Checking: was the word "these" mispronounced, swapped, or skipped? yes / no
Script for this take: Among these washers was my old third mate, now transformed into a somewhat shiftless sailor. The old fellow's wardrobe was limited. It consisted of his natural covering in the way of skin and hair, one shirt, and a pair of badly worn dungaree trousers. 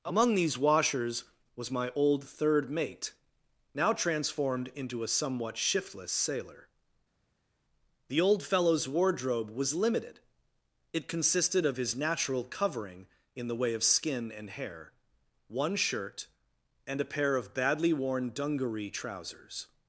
no